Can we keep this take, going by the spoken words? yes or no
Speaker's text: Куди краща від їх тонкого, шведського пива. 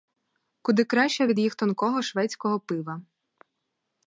yes